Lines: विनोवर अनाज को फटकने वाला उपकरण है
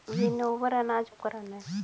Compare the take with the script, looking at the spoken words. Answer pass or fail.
fail